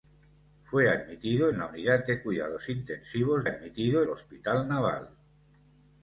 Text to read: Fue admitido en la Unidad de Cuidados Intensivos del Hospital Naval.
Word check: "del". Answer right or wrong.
wrong